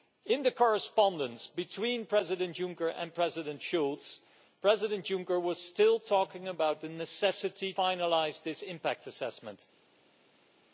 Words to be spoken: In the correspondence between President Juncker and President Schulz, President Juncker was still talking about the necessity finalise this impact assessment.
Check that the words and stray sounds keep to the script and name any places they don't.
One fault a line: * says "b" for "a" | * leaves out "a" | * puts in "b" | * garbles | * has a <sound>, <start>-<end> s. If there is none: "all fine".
all fine